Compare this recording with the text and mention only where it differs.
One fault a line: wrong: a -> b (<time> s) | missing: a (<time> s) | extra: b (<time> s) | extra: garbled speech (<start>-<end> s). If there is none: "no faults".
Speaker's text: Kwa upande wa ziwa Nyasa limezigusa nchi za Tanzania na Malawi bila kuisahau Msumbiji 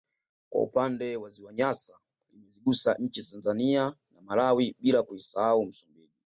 no faults